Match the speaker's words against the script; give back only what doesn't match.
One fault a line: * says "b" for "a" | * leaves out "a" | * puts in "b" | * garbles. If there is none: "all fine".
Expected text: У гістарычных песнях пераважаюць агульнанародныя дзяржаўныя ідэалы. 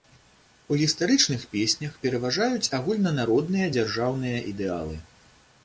all fine